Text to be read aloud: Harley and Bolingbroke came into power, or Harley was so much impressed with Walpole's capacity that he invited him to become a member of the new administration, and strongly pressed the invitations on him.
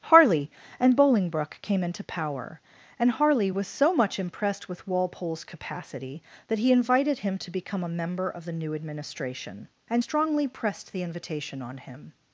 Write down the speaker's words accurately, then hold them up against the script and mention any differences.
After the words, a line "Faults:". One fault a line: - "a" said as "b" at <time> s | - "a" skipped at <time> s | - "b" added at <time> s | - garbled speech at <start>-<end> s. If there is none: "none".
Harley and Bolingbroke came into power, and Harley was so much impressed with Walpole's capacity that he invited him to become a member of the new administration, and strongly pressed the invitation on him.
Faults:
- "or" said as "and" at 3.0 s
- "invitations" said as "invitation" at 11.0 s